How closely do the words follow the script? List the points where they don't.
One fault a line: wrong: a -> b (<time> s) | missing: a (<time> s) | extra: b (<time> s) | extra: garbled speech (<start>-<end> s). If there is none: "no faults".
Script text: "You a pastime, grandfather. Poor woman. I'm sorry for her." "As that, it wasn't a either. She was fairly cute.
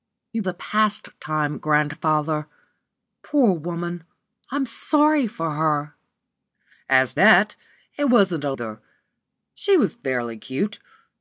no faults